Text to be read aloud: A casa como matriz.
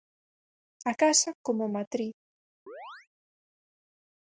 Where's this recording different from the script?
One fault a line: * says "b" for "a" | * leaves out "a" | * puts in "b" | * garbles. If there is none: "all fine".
all fine